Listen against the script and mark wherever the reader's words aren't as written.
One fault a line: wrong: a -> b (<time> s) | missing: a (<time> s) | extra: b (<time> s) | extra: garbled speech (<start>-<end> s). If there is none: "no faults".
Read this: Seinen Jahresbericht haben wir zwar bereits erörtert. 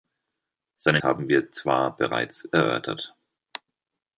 missing: Jahresbericht (1.0 s)